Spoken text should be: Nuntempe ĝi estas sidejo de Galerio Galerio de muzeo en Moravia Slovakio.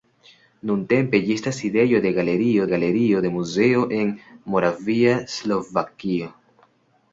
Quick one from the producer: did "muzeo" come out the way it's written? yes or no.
yes